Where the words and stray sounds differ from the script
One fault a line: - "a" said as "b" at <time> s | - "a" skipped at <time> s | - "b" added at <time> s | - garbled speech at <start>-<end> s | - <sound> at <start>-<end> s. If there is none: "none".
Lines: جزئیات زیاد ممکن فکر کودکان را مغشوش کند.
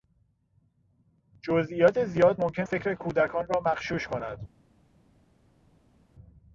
none